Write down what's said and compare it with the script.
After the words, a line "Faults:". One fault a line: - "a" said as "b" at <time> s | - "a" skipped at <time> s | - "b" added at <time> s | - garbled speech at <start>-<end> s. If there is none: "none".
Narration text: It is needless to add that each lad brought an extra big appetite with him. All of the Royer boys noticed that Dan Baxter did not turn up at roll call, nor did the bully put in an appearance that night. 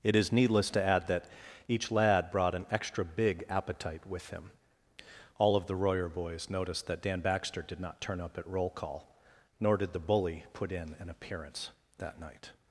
It is needless to add that each lad brought an extra big appetite with him. All of the Royer boys noticed that Dan Baxter did not turn up at roll call, nor did the bully put in an appearance that night.
Faults:
none